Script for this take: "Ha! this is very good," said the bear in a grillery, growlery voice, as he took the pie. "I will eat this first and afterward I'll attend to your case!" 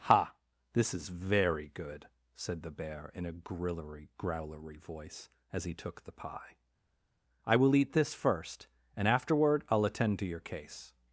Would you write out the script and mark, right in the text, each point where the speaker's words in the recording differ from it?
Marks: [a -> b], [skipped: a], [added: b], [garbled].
"Ha! this is very good," said the bear in a grillery, growlery voice, as he took the pie. "I will eat this first and afterward I'll attend to your case!"